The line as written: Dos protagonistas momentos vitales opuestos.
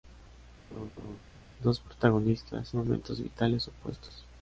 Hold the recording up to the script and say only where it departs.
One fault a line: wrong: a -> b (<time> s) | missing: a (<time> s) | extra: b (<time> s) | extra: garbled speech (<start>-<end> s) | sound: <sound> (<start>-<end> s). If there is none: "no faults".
sound: laugh (0.7-1.2 s)